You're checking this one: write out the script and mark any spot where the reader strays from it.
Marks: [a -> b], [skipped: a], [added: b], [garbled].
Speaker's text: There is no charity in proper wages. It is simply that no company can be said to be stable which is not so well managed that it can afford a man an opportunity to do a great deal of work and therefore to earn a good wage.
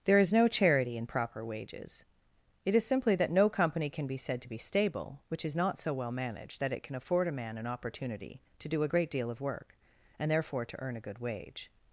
There is no charity in proper wages. It is simply that no company can be said to be stable which is not so well managed that it can afford a man an opportunity to do a great deal of work and therefore to earn a good wage.